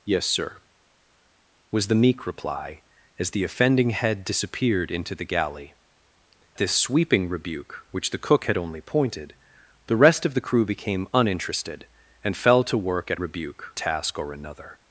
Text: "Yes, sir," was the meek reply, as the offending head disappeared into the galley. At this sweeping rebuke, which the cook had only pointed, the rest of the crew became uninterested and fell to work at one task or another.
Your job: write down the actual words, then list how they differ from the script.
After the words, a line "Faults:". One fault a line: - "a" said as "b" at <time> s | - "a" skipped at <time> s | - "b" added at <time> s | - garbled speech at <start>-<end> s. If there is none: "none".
"Yes, sir," was the meek reply, as the offending head disappeared into the galley. This sweeping rebuke, which the cook had only pointed, the rest of the crew became uninterested and fell to work at rebuke task or another.
Faults:
- "At" skipped at 5.8 s
- "one" said as "rebuke" at 13.2 s